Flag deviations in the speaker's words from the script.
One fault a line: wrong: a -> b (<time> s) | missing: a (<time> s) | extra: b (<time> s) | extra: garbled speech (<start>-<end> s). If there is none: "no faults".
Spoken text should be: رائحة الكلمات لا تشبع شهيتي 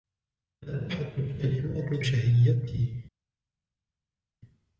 missing: لا تشبع (2.0 s)